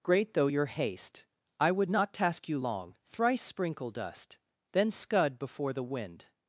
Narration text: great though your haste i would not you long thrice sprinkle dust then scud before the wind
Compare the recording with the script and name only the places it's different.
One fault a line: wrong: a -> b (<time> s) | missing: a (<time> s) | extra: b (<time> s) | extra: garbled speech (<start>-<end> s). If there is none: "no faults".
extra: task (2.1 s)